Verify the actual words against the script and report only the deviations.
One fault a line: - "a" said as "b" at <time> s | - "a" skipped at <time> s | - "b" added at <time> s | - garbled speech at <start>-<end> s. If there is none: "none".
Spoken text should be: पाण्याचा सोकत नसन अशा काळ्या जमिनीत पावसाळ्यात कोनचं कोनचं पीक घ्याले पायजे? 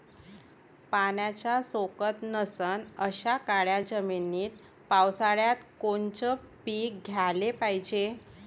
- "कोनचं" skipped at 6.3 s